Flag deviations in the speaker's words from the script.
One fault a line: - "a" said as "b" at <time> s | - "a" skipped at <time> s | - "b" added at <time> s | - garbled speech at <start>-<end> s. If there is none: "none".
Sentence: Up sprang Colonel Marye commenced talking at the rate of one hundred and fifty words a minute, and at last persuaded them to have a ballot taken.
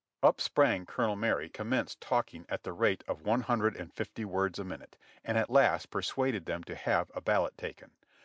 none